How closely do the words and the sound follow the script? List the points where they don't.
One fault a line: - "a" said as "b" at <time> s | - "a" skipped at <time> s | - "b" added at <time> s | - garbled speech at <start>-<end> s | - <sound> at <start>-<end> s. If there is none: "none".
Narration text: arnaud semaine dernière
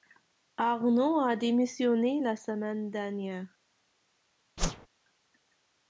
- "a démissionné la" added at 1.2 s
- whoosh at 4.6-4.9 s